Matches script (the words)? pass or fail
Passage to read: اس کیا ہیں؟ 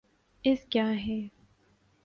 pass